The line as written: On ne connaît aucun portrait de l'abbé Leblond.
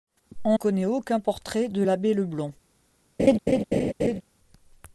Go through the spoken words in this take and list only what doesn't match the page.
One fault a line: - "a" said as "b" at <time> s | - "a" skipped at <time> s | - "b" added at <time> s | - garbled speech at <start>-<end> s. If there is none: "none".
- "ne" skipped at 0.6 s